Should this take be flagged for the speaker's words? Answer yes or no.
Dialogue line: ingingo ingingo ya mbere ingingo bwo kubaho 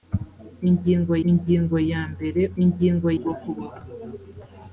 no